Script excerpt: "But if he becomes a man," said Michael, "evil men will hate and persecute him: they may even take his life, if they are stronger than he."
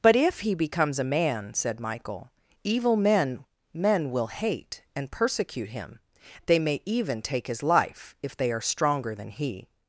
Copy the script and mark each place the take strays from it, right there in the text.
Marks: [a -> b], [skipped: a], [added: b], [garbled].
"But if he becomes a man," said Michael, "evil men [added: men] will hate and persecute him: they may even take his life, if they are stronger than he."